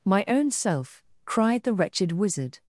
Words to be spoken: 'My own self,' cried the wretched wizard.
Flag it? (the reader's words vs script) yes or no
no